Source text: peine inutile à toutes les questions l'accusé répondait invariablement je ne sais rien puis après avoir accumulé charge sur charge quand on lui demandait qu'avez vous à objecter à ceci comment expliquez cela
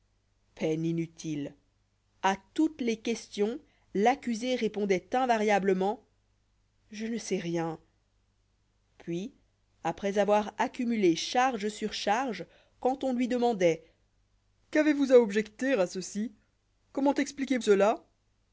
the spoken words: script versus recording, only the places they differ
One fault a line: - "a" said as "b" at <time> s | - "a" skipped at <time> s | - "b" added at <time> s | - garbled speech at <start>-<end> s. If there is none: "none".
none